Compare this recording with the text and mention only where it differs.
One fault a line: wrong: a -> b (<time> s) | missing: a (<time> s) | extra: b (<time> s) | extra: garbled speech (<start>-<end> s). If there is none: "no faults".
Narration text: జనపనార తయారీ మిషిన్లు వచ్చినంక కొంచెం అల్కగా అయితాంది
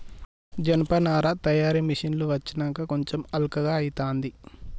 no faults